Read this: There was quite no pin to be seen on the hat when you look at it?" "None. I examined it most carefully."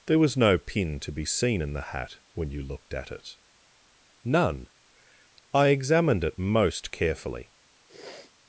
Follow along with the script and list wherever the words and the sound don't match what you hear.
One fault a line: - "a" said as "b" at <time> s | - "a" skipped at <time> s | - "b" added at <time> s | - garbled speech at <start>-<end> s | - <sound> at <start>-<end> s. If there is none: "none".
- "quite" skipped at 0.4 s
- "on" said as "in" at 1.6 s
- "look" said as "looked" at 2.6 s
- sniff at 7.8-8.3 s